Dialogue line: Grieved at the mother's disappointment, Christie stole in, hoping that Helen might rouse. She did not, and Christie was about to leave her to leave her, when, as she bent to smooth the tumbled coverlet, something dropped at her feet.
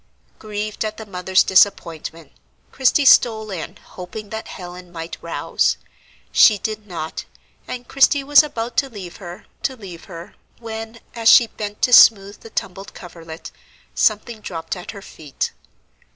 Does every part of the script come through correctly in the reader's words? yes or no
yes